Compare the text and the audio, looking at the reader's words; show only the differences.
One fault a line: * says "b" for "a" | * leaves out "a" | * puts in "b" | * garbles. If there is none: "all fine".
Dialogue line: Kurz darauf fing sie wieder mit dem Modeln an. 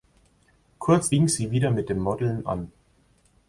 * leaves out "darauf"